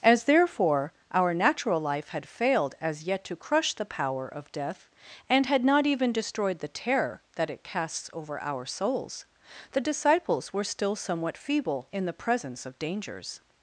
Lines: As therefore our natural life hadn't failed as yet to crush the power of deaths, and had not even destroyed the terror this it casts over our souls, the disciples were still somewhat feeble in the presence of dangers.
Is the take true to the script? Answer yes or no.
no